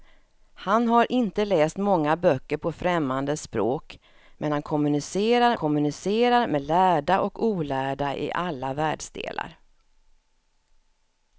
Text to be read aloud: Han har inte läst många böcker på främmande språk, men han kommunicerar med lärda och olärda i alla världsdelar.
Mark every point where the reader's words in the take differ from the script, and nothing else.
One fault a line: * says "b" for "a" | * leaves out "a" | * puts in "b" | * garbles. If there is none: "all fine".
* puts in "kommunicerar"